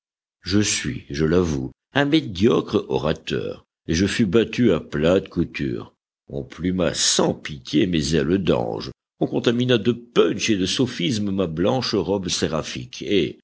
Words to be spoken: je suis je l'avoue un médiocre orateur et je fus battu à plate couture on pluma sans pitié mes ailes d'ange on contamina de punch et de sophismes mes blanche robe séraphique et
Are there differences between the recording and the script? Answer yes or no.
yes